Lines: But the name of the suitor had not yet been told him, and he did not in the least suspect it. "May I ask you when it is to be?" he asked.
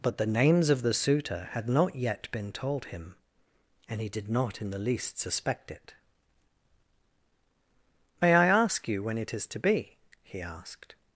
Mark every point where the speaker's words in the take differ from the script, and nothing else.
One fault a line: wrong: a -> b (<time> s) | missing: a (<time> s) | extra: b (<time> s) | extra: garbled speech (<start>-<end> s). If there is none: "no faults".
wrong: name -> names (0.2 s)